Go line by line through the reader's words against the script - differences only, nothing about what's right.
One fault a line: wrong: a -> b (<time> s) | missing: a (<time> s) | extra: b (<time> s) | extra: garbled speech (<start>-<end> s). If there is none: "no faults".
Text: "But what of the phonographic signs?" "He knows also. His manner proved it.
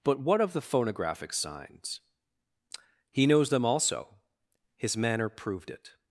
extra: them (3.5 s)